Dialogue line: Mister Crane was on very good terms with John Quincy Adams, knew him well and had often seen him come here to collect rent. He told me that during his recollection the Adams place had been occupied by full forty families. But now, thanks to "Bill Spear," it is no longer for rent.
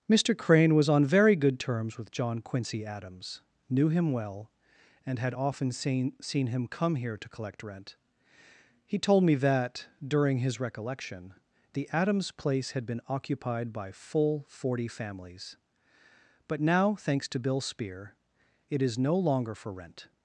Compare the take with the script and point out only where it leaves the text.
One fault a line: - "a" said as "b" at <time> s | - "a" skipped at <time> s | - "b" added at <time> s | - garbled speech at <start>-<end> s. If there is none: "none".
- "seen" added at 6.2 s